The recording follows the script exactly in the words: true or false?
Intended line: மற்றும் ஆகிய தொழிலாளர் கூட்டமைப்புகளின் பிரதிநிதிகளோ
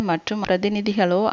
false